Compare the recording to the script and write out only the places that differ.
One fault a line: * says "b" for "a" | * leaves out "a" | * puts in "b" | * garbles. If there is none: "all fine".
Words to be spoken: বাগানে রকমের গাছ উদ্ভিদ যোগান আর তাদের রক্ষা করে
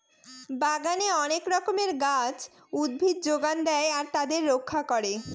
* puts in "অনেক"
* puts in "দেয়"